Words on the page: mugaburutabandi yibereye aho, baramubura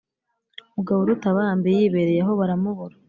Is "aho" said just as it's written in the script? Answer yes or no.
yes